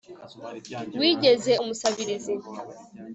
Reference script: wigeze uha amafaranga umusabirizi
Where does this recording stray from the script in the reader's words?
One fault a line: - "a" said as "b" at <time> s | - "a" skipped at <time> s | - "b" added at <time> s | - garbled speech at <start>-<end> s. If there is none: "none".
- "uha amafaranga" skipped at 1.5 s